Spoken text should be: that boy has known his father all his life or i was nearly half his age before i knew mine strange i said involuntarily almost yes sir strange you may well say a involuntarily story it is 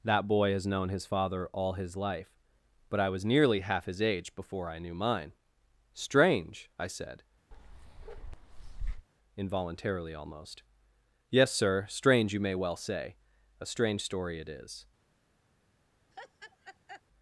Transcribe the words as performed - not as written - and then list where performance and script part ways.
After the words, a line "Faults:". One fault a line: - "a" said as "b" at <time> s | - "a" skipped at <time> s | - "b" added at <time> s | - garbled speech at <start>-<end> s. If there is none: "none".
that boy has known his father all his life but i was nearly half his age before i knew mine strange i said involuntarily almost yes sir strange you may well say a strange story it is
Faults:
- "or" said as "but" at 2.9 s
- "involuntarily" said as "strange" at 13.7 s